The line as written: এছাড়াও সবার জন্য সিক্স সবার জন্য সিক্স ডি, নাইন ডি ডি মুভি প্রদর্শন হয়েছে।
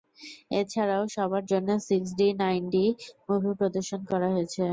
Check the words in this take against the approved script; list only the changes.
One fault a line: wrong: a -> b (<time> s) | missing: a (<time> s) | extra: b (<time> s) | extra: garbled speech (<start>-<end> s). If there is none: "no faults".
missing: সবার জন্য সিক্স (2.1 s)
missing: ডি (2.8 s)
extra: করা (4.1 s)